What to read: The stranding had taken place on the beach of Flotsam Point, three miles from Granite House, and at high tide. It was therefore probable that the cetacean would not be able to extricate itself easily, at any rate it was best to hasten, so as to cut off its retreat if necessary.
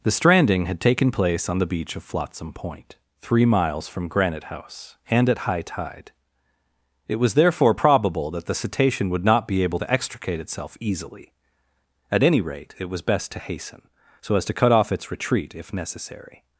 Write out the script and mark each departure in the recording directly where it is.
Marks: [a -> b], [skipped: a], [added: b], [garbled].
The stranding had taken place on the beach of Flotsam Point, three miles from Granite House, and at high tide. It was therefore probable that the cetacean would not be able to extricate itself easily, at any rate it was best to hasten, so as to cut off its retreat if necessary.